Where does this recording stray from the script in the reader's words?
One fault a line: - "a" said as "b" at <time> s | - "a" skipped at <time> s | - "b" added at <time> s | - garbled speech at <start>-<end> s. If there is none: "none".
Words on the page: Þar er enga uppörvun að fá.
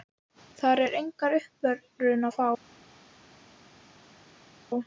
none